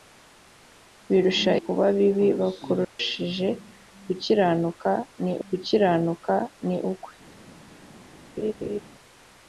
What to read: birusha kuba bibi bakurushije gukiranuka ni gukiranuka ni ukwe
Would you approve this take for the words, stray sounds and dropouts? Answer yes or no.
no